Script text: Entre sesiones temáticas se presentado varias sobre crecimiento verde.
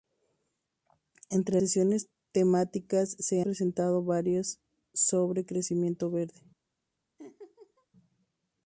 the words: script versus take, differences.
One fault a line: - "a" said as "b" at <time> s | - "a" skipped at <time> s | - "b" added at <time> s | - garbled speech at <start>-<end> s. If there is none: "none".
none